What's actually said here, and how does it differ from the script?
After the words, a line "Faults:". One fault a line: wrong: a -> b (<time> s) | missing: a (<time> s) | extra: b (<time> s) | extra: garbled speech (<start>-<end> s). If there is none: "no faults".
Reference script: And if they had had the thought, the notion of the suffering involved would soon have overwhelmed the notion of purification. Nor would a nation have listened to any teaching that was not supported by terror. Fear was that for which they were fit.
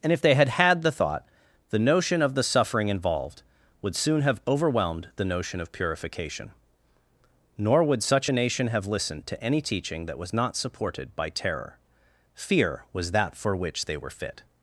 And if they had had the thought, the notion of the suffering involved would soon have overwhelmed the notion of purification. Nor would such a nation have listened to any teaching that was not supported by terror. Fear was that for which they were fit.
Faults:
extra: such (8.0 s)